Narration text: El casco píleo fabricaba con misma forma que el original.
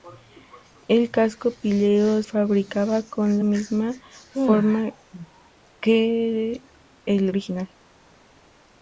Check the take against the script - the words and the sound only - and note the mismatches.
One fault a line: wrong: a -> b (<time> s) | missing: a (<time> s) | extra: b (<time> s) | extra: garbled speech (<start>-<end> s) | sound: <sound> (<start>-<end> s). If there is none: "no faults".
no faults